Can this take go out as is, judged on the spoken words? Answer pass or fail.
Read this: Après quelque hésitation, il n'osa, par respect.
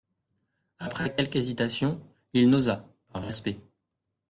pass